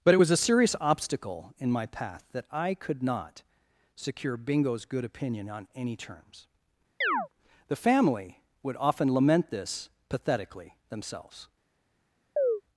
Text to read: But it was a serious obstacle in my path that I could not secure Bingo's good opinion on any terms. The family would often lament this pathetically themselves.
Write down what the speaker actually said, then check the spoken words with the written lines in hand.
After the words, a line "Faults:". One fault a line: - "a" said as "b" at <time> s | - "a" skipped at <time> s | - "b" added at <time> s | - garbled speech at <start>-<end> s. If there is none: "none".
But it was a serious obstacle in my path that I could not secure Bingo's good opinion on any terms. The family would often lament this pathetically themselves.
Faults:
none